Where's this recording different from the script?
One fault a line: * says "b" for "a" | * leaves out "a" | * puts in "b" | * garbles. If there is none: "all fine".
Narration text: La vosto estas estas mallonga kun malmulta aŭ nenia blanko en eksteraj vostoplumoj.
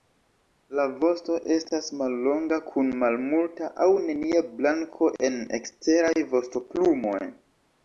* leaves out "estas"